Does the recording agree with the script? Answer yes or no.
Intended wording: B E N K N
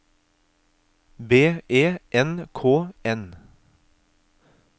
yes